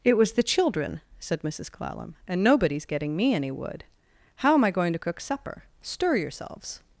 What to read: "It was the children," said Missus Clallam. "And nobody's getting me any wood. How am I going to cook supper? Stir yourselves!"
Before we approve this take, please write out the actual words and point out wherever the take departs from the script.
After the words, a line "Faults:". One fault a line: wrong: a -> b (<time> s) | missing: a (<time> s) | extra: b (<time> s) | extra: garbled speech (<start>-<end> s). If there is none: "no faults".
"It was the children," said Missus Clallam. "And nobody's getting me any wood. How am I going to cook supper? Stir yourselves!"
Faults:
no faults